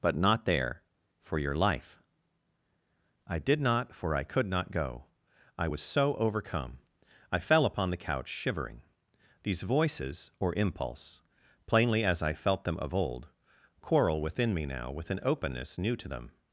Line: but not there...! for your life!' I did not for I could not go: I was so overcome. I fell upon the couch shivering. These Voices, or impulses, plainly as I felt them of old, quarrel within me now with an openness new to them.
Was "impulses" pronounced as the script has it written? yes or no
no